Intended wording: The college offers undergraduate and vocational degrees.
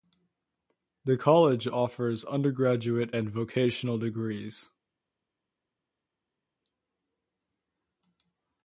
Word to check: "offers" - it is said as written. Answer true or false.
true